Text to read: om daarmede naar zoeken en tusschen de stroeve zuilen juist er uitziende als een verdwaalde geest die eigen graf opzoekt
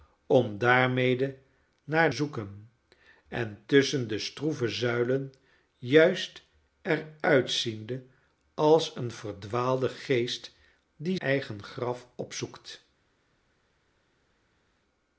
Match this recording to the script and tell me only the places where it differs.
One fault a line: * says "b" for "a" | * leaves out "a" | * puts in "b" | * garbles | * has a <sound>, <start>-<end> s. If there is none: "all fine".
all fine